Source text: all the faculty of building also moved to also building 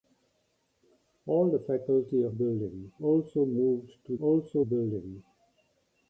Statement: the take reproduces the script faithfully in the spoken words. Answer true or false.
true